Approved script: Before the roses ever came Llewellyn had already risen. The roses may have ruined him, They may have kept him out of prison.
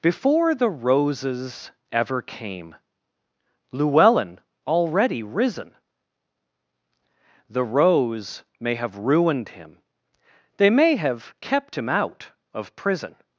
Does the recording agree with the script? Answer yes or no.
no